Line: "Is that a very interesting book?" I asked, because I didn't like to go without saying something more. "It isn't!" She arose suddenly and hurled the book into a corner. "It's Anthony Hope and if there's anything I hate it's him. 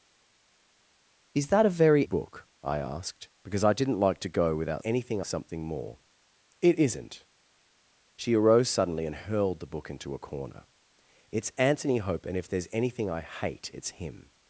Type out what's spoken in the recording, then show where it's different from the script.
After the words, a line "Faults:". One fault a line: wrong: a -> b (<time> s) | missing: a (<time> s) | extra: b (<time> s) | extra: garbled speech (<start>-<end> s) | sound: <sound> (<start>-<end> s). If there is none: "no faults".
"Is that a very book?" I asked, because I didn't like to go without anything something more. "It isn't!" She arose suddenly and hurled the book into a corner. "It's Anthony Hope and if there's anything I hate it's him.
Faults:
missing: interesting (2.0 s)
wrong: saying -> anything (4.8 s)